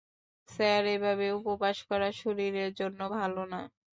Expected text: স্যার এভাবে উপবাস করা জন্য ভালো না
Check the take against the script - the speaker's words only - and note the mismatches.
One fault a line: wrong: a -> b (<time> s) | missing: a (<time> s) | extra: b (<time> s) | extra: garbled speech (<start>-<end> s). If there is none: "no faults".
extra: শরীরের (2.2 s)